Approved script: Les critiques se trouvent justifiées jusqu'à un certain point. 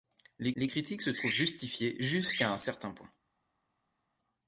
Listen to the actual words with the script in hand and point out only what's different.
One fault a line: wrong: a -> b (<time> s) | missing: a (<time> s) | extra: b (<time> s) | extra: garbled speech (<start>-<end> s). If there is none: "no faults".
extra: les (0.6 s)